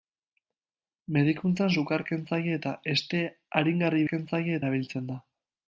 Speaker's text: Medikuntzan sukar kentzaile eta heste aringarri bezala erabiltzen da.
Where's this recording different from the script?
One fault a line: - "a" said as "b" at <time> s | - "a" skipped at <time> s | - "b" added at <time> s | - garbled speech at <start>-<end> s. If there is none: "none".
- "bezala" said as "kentzaile" at 4.1 s